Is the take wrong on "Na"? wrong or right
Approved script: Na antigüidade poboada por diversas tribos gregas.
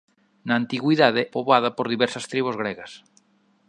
right